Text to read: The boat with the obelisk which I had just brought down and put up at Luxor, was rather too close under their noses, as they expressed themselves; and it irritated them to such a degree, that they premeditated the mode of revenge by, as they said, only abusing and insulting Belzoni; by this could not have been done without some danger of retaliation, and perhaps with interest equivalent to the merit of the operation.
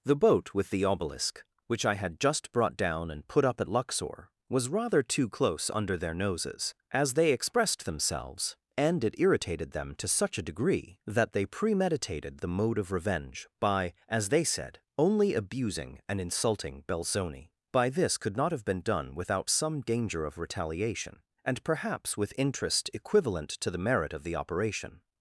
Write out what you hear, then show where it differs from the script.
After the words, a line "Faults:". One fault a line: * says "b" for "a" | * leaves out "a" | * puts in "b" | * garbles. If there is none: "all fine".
The boat with the obelisk which I had just brought down and put up at Luxor, was rather too close under their noses, as they expressed themselves; and it irritated them to such a degree, that they premeditated the mode of revenge by, as they said, only abusing and insulting Belzoni; by this could not have been done without some danger of retaliation, and perhaps with interest equivalent to the merit of the operation.
Faults:
all fine